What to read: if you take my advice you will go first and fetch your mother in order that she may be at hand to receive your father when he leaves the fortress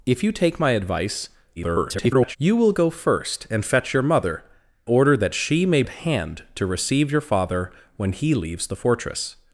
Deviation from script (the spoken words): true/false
true